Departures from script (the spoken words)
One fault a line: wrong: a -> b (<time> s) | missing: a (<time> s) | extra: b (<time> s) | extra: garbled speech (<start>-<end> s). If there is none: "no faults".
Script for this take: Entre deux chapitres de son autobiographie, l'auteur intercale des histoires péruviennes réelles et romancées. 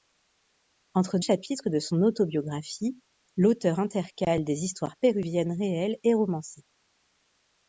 missing: deux (1.2 s)